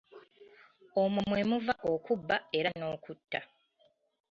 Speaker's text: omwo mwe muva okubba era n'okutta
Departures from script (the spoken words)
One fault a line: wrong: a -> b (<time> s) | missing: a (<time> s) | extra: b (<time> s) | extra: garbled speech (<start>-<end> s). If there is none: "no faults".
no faults